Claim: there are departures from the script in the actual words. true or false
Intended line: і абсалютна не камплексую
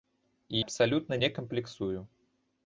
false